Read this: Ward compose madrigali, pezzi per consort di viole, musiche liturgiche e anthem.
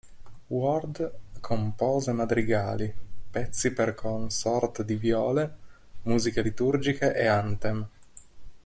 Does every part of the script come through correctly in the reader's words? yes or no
yes